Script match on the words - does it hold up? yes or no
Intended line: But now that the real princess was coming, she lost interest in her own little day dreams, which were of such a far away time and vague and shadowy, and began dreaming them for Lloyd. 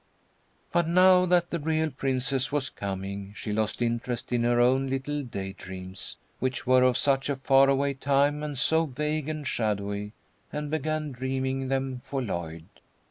no